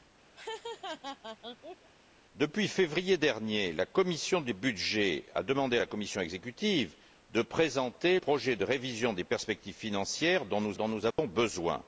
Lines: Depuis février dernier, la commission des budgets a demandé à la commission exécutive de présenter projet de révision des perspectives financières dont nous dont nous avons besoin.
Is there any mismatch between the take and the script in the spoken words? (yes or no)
no